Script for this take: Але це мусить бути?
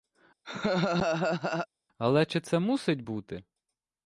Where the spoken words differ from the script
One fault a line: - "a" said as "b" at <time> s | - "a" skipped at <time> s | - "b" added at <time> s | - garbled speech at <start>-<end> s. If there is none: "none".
- "чи" added at 2.3 s